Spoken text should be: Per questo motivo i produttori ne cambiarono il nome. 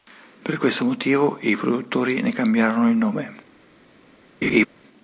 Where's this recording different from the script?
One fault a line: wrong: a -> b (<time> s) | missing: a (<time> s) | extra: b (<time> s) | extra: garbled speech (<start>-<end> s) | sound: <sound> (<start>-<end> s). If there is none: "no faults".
sound: laugh (4.4-4.7 s)